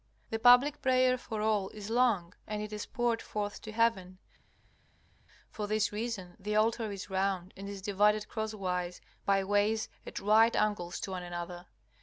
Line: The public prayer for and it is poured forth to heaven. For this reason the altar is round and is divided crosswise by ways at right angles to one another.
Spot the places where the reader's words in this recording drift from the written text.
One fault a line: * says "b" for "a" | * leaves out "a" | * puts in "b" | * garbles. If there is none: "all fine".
* puts in "all is long"